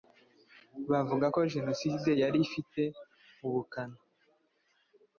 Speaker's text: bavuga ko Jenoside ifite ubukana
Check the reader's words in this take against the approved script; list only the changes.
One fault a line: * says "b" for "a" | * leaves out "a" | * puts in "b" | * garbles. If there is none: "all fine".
* puts in "yari"